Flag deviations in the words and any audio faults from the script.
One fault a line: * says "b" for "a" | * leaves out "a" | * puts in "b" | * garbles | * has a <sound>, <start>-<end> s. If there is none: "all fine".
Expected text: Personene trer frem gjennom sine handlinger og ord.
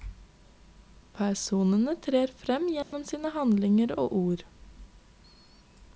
* has a dropout, 2.8-2.9 s